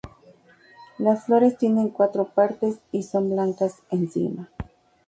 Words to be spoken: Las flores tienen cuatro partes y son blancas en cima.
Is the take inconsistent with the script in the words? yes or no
no